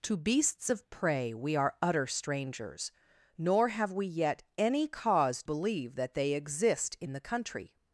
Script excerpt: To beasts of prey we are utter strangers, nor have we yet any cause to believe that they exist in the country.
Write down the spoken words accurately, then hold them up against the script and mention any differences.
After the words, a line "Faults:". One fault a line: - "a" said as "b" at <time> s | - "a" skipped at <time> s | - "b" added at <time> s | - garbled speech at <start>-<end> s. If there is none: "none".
To beasts of prey we are utter strangers, nor have we yet any cause believe that they exist in the country.
Faults:
- "to" skipped at 5.4 s